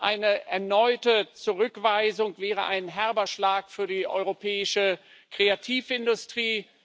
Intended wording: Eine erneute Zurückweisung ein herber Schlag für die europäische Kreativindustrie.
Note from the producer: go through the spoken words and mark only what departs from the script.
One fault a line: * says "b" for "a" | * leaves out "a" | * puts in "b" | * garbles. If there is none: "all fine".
* puts in "wäre"